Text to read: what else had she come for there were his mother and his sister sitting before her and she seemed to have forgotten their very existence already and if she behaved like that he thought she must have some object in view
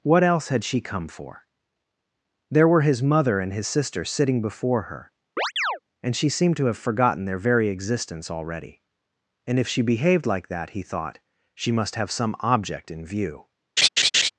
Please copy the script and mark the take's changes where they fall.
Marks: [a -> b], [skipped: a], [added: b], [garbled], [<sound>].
what else had she come for there were his mother and his sister sitting before her [chirp] and she seemed to have forgotten their very existence already and if she behaved like that he thought she must have some object in view [laugh]